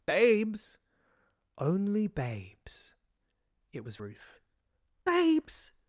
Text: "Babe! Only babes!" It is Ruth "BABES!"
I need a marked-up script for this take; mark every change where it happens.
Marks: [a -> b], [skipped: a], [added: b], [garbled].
["Babe! -> Babes] Only babes!" It [is -> was] Ruth "BABES!"